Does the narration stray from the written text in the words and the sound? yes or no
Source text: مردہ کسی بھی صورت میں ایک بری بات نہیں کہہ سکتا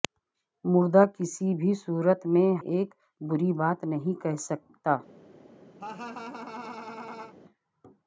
yes